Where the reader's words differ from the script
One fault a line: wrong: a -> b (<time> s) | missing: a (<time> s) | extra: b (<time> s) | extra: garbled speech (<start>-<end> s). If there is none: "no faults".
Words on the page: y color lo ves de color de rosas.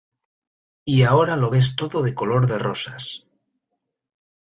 wrong: color -> ahora (1.0 s)
extra: todo (1.7 s)